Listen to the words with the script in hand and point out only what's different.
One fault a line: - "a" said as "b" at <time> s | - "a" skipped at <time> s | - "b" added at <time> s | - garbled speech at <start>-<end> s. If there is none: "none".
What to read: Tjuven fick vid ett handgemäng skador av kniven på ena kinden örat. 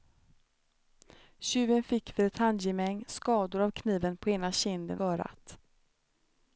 none